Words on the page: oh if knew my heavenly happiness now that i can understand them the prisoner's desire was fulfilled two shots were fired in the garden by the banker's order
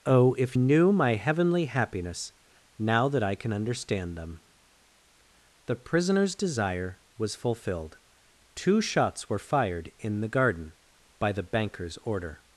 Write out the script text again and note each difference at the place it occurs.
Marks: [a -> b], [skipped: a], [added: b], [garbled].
oh if knew my heavenly happiness now that i can understand them the prisoner's desire was fulfilled two shots were fired in the garden by the banker's order